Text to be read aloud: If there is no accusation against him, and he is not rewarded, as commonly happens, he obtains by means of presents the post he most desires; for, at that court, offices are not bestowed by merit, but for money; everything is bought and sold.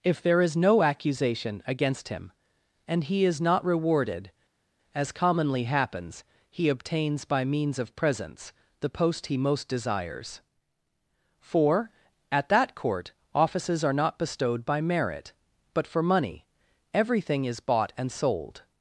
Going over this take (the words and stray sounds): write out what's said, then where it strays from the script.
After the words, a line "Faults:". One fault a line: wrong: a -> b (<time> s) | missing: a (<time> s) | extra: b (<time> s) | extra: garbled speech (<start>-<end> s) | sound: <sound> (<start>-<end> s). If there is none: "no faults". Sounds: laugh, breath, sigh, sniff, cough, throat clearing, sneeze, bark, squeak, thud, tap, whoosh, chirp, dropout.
If there is no accusation against him, and he is not rewarded, as commonly happens, he obtains by means of presents the post he most desires; for, at that court, offices are not bestowed by merit, but for money; everything is bought and sold.
Faults:
no faults